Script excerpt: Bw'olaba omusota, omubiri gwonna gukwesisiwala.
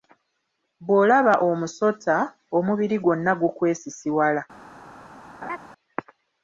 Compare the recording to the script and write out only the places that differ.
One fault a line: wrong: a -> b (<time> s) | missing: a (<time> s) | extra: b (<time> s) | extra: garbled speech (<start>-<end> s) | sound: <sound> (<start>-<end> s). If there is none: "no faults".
sound: laugh (5.4-5.6 s)